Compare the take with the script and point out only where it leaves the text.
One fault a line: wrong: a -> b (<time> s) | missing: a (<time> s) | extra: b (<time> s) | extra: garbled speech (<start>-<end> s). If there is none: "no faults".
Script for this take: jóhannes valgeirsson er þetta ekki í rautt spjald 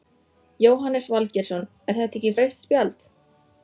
no faults